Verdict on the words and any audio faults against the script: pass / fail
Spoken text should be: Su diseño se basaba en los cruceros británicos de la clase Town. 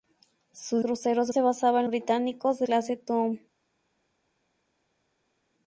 fail